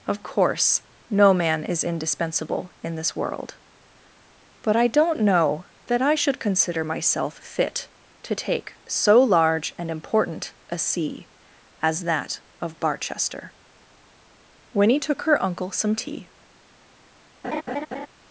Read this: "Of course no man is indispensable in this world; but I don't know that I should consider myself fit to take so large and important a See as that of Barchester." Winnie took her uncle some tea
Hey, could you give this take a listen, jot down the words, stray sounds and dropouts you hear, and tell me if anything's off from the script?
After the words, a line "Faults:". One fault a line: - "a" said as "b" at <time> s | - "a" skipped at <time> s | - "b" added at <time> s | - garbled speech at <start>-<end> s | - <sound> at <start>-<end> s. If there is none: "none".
"Of course no man is indispensable in this world; but I don't know that I should consider myself fit to take so large and important a See as that of Barchester." Winnie took her uncle some tea
Faults:
- laugh at 17.4-18.1 s